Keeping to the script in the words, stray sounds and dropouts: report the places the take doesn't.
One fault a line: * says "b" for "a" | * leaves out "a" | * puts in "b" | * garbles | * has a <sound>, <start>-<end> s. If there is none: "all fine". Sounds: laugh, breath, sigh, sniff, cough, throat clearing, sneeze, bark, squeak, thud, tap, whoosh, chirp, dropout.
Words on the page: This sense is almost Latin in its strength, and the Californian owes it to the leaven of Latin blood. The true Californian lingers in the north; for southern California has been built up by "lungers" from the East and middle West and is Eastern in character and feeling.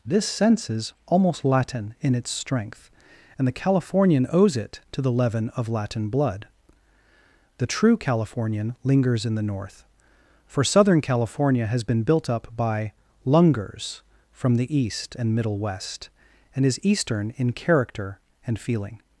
all fine